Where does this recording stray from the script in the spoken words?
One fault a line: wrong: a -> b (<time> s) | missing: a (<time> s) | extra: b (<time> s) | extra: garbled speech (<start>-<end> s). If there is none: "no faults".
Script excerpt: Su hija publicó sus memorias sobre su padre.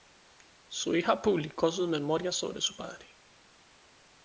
no faults